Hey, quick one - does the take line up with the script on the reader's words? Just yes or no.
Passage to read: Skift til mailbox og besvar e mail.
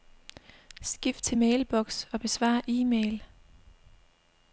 yes